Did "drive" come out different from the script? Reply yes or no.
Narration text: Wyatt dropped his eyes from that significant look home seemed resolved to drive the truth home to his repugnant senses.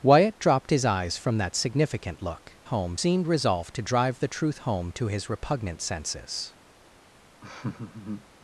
no